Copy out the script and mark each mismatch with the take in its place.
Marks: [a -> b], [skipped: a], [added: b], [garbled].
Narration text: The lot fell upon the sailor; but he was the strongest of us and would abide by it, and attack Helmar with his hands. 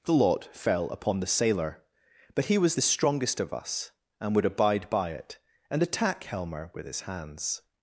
The lot fell upon the sailor; but he was the strongest of us and would abide by it, and attack Helmar with his hands.